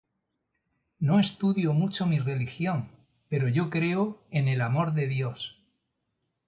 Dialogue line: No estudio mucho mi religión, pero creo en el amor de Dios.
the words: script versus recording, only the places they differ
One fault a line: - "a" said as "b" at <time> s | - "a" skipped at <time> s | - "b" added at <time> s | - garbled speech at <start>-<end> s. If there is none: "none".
- "yo" added at 3.5 s